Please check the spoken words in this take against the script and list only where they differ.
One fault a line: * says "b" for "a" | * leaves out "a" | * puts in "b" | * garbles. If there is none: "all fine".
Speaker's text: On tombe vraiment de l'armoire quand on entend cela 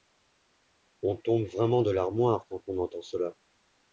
all fine